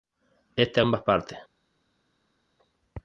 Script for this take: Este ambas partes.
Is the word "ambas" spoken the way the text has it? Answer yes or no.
yes